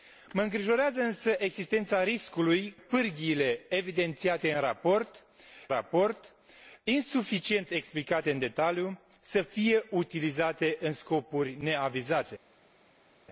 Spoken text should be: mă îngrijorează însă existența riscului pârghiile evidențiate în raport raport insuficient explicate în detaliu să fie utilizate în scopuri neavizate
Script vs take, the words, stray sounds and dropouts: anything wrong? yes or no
no